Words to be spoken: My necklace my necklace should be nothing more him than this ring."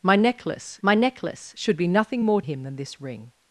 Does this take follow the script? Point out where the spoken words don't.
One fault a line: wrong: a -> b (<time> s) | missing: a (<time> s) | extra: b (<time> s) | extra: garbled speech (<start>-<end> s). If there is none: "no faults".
no faults